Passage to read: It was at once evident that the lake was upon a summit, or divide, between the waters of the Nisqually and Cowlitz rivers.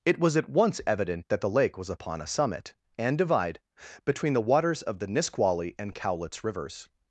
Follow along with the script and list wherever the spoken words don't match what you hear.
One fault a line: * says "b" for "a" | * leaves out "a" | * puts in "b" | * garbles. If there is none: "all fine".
* says "and" for "or"